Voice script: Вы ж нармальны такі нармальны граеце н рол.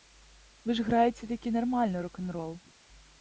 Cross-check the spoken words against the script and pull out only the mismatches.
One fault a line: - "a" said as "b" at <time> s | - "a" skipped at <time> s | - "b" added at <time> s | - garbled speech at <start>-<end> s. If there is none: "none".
- "нармальны" said as "граеце" at 0.9 s
- "граеце" said as "рок" at 2.0 s